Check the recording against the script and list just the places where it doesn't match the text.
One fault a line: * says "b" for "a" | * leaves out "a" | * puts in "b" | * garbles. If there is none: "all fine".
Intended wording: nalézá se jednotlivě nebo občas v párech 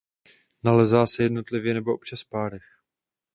all fine